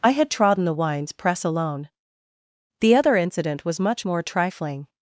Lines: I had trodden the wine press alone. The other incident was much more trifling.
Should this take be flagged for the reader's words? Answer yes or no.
yes